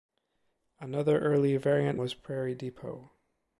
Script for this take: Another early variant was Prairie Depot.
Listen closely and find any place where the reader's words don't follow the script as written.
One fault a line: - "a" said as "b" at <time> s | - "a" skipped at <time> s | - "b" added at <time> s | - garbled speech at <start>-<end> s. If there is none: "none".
none